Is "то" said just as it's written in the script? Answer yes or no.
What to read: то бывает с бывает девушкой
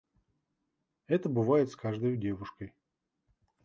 no